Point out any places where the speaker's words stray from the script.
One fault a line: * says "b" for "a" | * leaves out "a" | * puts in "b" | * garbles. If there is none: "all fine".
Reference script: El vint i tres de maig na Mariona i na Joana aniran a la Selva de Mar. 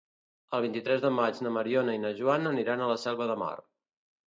all fine